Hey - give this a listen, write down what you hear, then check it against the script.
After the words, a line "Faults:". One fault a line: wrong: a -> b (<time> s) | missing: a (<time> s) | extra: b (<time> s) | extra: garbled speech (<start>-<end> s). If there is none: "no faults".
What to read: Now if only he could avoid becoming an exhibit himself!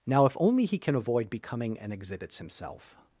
Now if only he can avoid becoming an exhibits himself!
Faults:
wrong: could -> can (0.8 s)
wrong: exhibit -> exhibits (1.9 s)